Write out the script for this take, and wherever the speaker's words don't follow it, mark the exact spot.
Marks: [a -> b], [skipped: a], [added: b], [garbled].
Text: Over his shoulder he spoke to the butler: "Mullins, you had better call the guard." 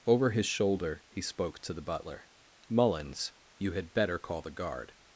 Over his shoulder he spoke to the butler: "Mullins, you had better call the guard."